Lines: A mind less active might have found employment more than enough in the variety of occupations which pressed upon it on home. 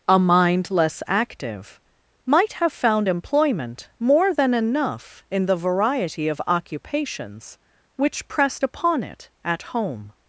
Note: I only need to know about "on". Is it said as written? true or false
false